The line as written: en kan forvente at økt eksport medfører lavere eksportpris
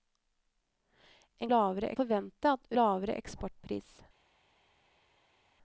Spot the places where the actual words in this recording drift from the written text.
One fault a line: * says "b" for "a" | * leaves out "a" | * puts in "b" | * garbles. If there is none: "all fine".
* says "lavere" for "kan"
* leaves out "økt eksport medfører"